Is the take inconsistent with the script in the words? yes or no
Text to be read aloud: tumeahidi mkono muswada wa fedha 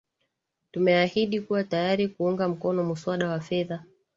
yes